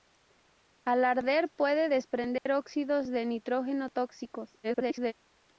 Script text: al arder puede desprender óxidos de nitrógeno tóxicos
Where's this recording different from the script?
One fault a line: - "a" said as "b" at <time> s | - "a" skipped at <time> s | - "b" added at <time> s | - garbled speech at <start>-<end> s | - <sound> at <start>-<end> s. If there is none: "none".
- dropout at 2.4-2.5 s
- garbled speech at 4.6-5.1 s